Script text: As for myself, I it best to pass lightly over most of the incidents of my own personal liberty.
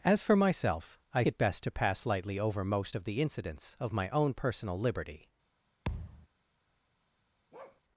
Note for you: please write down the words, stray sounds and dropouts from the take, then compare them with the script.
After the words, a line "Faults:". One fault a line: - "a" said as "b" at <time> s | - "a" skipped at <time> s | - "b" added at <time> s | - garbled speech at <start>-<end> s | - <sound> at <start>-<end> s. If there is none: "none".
As for myself, I it best to pass lightly over most of the incidents of my own personal liberty.
Faults:
- thud at 5.9-6.3 s
- bark at 7.5-7.8 s